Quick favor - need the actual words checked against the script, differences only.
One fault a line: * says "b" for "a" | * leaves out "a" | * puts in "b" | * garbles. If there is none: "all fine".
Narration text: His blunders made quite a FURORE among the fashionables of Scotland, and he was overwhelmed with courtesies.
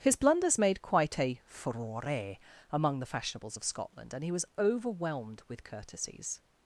all fine